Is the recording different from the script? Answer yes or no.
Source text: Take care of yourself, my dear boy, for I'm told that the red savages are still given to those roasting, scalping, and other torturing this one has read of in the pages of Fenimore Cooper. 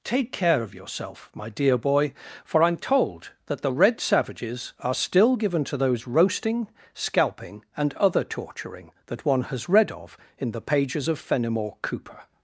yes